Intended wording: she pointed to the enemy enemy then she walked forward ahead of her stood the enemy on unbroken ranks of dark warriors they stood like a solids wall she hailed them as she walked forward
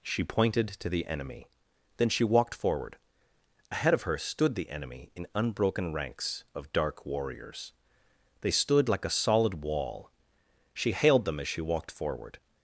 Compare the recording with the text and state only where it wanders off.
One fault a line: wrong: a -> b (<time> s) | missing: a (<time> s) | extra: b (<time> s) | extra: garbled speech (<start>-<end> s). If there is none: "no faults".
missing: enemy (1.5 s)
wrong: on -> in (5.2 s)
wrong: solids -> solid (9.2 s)